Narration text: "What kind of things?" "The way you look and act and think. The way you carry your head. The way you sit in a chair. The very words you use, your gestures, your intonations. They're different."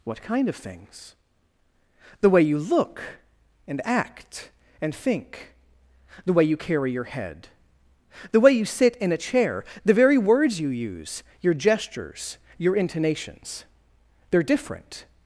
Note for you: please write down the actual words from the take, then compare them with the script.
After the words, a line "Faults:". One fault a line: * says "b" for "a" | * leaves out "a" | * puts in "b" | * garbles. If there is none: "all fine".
"What kind of things?" "The way you look and act and think. The way you carry your head. The way you sit in a chair. The very words you use, your gestures, your intonations. They're different."
Faults:
all fine